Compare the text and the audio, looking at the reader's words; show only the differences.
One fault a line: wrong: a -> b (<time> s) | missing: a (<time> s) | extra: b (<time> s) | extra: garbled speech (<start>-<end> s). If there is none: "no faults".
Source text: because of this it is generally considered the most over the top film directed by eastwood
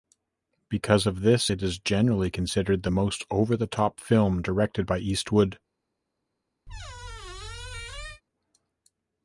no faults